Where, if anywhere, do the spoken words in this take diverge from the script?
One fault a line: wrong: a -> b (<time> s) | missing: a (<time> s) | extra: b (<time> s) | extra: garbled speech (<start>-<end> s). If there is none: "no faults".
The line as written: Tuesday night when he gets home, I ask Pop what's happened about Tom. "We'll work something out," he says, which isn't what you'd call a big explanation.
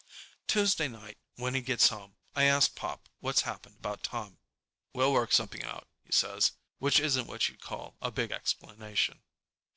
no faults